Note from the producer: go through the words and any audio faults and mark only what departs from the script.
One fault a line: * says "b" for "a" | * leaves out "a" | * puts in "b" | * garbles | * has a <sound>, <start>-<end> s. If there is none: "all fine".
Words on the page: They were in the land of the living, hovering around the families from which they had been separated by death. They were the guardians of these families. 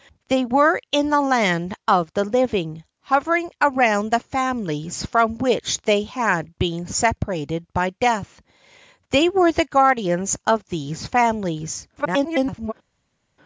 * garbles